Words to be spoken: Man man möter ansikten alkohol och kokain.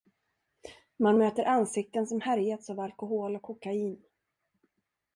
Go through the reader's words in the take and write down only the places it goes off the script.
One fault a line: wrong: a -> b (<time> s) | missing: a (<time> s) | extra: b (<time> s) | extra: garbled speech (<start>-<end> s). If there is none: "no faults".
missing: man (1.2 s)
extra: som härjats av (2.1 s)